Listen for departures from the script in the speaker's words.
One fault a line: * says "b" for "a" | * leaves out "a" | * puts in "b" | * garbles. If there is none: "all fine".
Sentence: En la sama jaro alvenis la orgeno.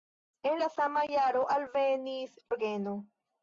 * leaves out "la"